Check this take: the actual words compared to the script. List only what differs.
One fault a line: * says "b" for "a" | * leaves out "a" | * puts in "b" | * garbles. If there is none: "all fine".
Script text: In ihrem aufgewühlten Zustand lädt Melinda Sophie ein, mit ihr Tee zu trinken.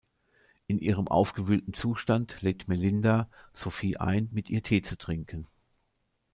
all fine